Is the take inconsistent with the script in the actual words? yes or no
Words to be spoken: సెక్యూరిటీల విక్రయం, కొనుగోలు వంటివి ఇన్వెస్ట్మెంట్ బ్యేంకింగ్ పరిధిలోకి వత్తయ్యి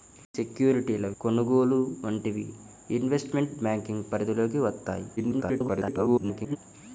yes